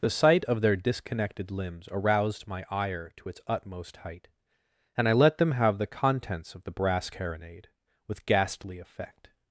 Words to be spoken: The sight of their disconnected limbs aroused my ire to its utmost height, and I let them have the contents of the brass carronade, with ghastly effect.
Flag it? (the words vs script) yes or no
no